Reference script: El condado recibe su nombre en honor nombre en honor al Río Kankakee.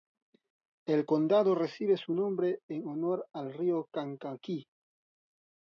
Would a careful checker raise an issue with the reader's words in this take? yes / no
yes